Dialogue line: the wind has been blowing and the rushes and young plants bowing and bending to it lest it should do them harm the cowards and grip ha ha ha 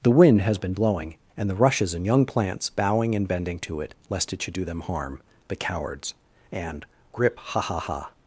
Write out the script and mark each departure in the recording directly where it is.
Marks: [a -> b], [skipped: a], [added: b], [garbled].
the wind has been blowing and the rushes and young plants bowing and bending to it lest it should do them harm the cowards and grip ha ha ha